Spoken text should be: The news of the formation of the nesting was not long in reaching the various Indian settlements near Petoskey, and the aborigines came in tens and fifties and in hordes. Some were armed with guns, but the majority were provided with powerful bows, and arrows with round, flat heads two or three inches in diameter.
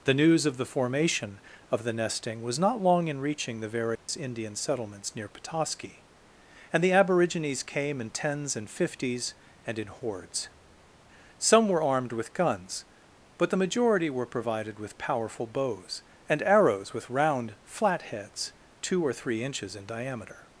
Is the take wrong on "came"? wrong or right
right